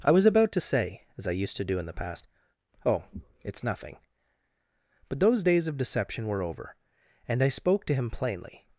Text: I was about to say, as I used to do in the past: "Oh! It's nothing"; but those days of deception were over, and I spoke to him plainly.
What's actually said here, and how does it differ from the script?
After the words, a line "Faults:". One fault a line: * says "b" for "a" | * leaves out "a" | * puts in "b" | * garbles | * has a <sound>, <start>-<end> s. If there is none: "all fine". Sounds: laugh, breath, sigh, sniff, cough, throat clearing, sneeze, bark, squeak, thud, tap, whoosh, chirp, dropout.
I was about to say, as I used to do in the past: "Oh! It's nothing"; but those days of deception were over, and I spoke to him plainly.
Faults:
all fine